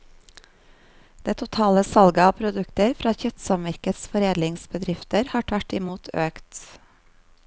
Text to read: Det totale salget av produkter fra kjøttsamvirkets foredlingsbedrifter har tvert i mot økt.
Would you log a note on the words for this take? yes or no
no